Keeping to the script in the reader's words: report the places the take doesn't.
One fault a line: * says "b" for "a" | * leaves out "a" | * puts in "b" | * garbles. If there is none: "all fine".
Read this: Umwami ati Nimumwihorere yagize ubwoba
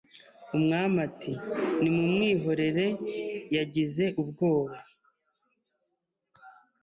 all fine